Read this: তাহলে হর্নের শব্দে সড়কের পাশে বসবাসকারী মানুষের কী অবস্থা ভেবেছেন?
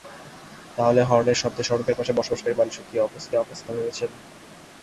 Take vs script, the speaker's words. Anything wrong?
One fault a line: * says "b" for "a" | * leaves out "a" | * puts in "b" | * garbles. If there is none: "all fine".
* puts in "অবস্থা"